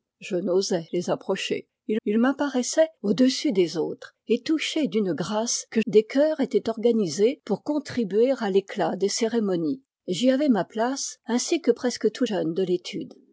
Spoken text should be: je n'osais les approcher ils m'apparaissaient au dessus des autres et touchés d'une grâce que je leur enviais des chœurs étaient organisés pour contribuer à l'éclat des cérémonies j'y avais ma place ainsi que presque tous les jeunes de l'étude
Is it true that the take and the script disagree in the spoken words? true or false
true